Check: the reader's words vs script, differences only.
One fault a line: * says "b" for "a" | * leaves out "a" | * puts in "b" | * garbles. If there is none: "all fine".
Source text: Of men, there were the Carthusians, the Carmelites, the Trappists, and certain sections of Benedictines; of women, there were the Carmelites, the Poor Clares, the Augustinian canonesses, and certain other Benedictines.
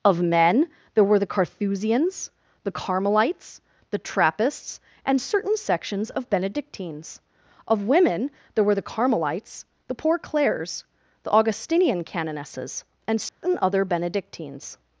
all fine